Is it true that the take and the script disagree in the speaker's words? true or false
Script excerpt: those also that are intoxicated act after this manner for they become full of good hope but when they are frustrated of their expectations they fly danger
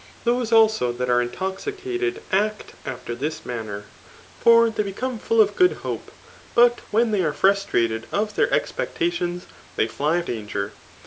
false